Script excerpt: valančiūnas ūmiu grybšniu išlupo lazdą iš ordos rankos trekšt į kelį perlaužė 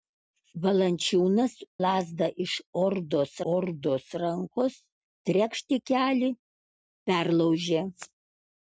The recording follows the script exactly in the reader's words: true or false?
false